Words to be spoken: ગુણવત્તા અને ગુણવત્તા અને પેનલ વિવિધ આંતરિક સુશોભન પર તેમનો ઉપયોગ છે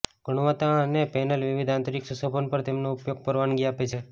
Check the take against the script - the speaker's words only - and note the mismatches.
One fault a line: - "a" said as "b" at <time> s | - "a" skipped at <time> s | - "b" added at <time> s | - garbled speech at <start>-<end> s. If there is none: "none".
- "ગુણવત્તા અને" skipped at 1.0 s
- "પરવાનગી આપે" added at 3.2 s